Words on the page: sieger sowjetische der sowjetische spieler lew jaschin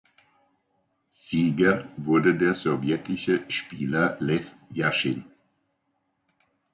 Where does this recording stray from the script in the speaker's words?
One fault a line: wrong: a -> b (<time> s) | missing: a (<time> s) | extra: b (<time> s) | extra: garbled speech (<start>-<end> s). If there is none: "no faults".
wrong: sowjetische -> wurde (2.0 s)